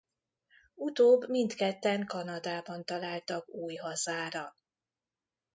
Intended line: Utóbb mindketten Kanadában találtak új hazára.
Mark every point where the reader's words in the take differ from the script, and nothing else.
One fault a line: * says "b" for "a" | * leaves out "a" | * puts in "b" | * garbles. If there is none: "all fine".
all fine